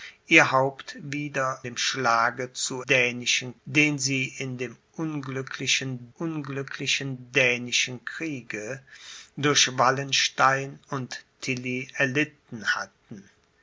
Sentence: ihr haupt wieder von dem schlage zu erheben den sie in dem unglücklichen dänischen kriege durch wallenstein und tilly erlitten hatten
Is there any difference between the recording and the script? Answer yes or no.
yes